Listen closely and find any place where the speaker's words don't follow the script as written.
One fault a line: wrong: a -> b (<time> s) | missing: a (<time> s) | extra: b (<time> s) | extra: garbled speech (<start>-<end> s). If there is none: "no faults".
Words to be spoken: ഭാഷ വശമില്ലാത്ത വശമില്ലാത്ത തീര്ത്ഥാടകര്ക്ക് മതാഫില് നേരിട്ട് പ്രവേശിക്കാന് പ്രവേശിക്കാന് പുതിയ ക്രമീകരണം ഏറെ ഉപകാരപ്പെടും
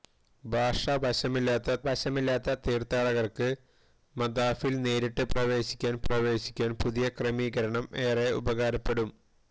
no faults